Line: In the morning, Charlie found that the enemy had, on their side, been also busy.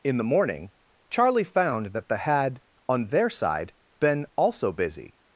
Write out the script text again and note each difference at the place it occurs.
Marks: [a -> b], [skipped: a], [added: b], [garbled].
In the morning, Charlie found that the [skipped: enemy] had, on their side, been also busy.